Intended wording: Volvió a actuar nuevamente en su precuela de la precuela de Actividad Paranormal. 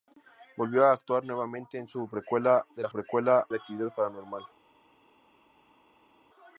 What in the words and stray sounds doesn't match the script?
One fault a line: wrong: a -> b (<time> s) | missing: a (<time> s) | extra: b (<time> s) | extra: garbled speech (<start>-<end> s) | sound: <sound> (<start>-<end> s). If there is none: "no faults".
no faults